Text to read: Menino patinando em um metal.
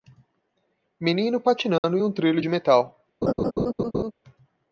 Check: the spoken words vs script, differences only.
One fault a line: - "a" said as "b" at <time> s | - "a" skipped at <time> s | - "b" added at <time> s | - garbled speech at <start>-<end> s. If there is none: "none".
- "trilho de" added at 2.1 s